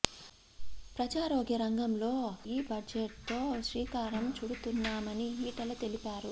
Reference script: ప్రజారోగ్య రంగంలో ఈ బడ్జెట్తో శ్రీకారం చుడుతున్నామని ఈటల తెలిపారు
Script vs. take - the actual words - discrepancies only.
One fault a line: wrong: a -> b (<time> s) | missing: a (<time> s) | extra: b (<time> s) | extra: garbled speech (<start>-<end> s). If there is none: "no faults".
no faults